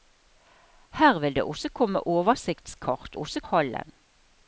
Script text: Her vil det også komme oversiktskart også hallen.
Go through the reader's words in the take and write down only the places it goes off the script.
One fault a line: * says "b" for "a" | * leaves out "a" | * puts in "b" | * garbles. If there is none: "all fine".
all fine